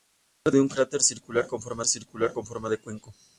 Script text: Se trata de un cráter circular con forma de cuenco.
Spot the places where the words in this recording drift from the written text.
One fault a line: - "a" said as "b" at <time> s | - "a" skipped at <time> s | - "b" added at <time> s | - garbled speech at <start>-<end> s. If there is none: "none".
- "trata" skipped at 0.5 s
- "circular con forma" added at 1.9 s